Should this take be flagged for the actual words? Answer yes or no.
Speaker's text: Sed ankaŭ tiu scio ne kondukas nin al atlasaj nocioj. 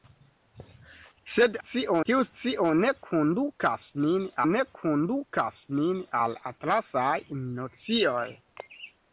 yes